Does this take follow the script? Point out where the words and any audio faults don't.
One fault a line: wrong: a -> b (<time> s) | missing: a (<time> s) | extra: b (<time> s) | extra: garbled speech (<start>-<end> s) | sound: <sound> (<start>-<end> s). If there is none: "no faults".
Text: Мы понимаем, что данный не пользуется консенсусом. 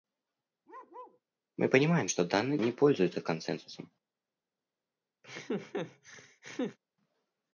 sound: bark (0.7-1.2 s)
sound: laugh (5.2-6.8 s)